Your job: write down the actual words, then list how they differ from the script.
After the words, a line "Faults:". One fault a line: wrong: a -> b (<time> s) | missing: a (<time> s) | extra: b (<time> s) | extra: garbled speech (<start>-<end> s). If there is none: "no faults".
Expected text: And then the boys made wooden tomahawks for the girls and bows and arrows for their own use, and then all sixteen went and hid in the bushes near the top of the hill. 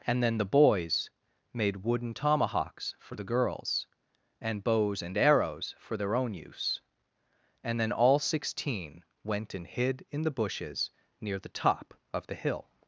And then the boys made wooden tomahawks for the girls and bows and arrows for their own use, and then all sixteen went and hid in the bushes near the top of the hill.
Faults:
no faults